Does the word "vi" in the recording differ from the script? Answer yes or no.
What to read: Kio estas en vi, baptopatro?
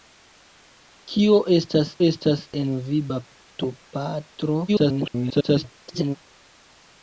no